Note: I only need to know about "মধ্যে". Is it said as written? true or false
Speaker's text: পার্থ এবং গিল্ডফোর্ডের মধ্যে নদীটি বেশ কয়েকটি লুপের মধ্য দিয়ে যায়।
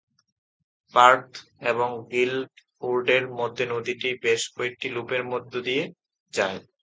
true